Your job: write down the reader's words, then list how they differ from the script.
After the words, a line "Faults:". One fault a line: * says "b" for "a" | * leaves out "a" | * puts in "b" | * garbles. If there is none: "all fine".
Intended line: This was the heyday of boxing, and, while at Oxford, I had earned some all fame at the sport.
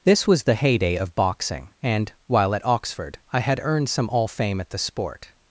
This was the heyday of boxing, and, while at Oxford, I had earned some all fame at the sport.
Faults:
all fine